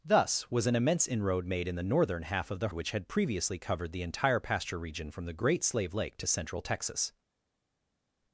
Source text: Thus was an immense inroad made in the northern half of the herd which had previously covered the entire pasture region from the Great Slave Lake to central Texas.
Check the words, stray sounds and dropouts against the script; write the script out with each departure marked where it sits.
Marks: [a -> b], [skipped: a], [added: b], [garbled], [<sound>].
Thus was an immense inroad made in the northern half of the [skipped: herd] which had previously covered the entire pasture region from the Great Slave Lake to central Texas.